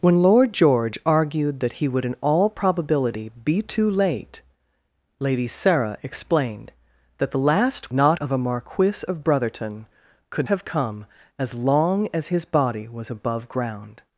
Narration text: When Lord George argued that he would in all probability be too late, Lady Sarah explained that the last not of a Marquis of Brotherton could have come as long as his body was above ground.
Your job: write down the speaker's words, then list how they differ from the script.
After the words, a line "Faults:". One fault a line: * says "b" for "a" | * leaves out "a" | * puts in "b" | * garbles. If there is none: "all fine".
When Lord George argued that he would in all probability be too late, Lady Sarah explained that the last not of a Marquis of Brotherton could have come as long as his body was above ground.
Faults:
all fine